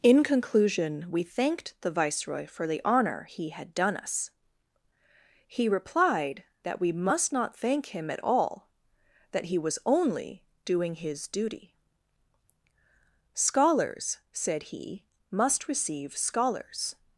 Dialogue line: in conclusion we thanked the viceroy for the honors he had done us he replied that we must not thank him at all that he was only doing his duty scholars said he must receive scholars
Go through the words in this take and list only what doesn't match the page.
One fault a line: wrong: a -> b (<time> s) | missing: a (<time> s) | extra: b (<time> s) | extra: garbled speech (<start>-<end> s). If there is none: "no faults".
wrong: honors -> honor (2.8 s)